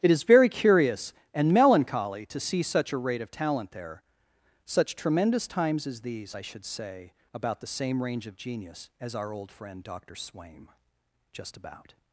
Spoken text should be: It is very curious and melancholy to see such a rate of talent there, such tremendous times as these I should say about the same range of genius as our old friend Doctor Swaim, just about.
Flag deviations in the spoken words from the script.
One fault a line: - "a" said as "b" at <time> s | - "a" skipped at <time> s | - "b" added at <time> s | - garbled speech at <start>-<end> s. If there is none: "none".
none